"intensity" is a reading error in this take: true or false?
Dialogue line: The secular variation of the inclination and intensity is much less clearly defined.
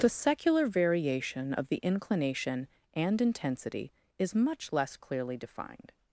false